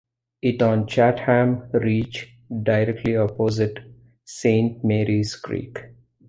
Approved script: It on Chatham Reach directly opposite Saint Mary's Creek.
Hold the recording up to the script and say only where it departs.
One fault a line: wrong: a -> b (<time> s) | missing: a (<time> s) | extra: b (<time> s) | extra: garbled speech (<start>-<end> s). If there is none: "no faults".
no faults